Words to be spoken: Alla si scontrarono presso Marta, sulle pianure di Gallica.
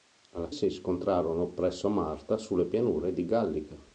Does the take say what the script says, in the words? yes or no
yes